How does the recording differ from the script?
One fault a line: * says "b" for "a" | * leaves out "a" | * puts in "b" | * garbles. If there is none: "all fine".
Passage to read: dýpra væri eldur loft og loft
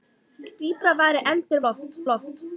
all fine